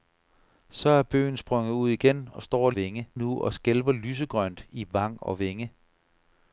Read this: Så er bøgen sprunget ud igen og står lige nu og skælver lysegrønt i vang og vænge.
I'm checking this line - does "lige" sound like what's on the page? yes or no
no